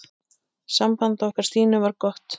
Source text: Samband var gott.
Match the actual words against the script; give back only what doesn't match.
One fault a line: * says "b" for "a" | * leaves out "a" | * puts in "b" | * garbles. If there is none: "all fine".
* puts in "okkar Stínu"